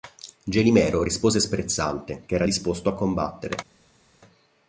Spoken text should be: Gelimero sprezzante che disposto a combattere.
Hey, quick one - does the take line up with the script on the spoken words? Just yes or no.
no